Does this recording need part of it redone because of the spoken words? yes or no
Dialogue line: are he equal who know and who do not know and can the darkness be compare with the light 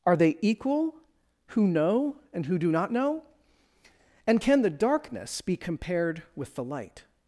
yes